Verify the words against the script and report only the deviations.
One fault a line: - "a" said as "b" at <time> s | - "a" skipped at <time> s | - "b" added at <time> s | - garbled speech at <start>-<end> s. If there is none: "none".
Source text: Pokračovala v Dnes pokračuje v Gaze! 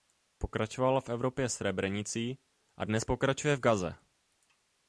- "Evropě Srebrenicí a" added at 1.1 s